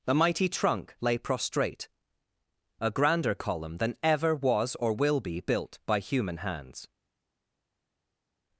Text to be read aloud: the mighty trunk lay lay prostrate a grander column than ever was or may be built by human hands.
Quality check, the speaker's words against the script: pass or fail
fail